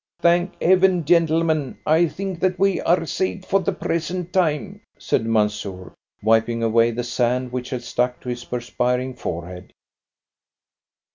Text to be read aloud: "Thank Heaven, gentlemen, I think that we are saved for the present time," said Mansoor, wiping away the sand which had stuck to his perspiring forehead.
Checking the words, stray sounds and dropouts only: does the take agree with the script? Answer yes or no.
yes